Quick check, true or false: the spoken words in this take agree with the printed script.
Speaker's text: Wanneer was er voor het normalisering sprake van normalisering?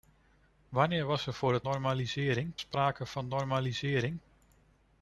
true